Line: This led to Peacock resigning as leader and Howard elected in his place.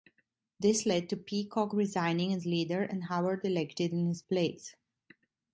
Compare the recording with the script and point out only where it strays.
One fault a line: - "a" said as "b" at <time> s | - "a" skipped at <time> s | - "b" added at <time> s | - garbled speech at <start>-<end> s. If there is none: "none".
none